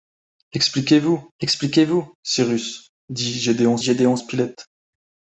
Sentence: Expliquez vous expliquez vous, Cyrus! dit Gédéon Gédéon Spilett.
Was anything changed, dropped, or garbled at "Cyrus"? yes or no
no